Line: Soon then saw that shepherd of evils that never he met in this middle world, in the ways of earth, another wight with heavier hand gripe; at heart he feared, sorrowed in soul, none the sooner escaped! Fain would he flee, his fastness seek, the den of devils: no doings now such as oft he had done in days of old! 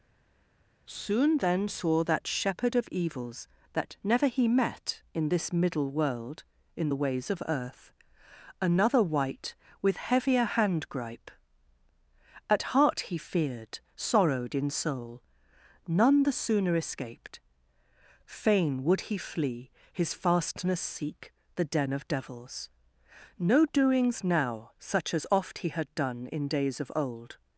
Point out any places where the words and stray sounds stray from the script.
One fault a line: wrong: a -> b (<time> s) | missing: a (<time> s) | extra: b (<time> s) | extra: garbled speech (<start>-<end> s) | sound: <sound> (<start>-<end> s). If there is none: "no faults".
no faults